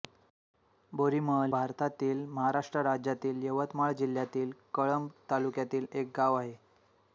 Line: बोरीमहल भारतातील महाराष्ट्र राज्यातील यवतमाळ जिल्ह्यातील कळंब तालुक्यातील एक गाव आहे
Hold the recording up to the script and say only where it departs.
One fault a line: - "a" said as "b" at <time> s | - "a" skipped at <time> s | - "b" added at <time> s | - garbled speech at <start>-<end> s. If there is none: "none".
none